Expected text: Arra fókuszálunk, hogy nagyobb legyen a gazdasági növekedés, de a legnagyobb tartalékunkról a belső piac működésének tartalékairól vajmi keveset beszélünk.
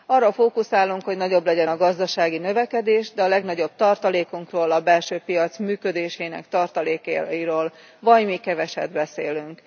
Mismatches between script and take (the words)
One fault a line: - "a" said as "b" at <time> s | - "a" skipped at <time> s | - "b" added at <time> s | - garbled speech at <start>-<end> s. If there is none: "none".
none